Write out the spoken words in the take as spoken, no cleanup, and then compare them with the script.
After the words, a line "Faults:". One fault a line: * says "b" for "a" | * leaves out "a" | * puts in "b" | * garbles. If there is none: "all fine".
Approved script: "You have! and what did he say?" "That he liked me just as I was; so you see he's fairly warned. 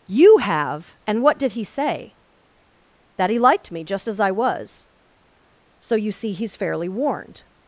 "You have! and what did he say?" "That he liked me just as I was; so you see he's fairly warned.
Faults:
all fine